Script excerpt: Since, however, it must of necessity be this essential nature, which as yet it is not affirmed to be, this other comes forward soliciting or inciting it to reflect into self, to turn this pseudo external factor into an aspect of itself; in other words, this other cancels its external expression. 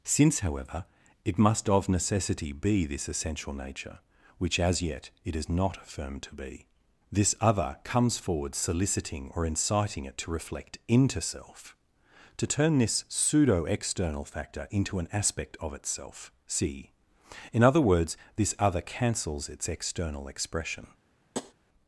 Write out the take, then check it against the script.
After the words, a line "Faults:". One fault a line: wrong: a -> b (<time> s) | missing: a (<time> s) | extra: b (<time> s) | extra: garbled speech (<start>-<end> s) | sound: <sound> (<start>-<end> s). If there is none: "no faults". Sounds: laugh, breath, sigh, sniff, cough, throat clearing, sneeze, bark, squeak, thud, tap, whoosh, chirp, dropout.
Since, however, it must of necessity be this essential nature, which as yet it is not affirmed to be, this other comes forward soliciting or inciting it to reflect into self, to turn this pseudo external factor into an aspect of itself; see in other words, this other cancels its external expression.
Faults:
extra: see (16.5 s)
sound: tap (21.3-21.5 s)